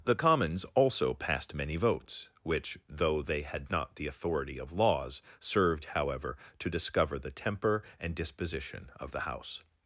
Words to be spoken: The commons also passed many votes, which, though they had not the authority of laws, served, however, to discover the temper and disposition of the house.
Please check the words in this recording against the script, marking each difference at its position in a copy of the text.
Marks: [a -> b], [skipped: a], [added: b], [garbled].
The commons also passed many votes, which, though they had not the authority of laws, served, however, to discover the temper and disposition of the house.